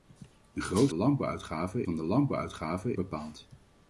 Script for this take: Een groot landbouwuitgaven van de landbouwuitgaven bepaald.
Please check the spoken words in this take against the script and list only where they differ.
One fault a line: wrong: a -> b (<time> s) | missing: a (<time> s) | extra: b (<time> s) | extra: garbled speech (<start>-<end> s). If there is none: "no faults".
no faults